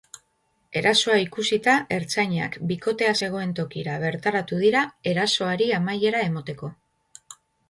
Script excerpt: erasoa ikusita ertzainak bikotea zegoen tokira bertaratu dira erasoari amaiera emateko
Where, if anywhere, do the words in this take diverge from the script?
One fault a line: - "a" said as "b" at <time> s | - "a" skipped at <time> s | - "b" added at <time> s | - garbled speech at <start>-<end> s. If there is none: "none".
none